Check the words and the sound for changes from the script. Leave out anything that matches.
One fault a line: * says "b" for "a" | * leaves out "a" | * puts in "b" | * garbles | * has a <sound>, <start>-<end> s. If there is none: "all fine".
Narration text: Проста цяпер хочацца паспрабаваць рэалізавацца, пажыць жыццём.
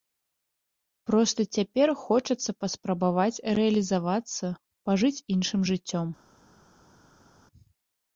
* puts in "іншым"